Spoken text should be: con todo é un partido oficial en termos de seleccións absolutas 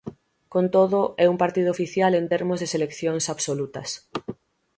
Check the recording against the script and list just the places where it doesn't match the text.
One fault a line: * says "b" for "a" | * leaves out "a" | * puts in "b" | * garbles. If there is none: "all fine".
all fine